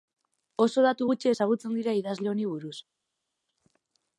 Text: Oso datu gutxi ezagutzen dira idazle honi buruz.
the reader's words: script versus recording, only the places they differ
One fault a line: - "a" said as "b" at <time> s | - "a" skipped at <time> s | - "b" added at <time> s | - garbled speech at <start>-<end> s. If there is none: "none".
none